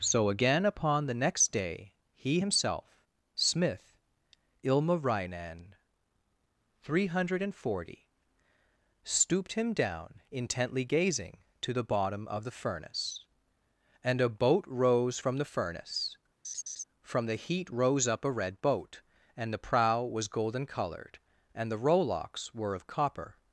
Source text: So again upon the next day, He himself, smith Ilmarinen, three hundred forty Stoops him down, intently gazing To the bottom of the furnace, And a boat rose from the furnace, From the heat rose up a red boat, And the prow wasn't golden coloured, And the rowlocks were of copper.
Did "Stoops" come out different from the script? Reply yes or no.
yes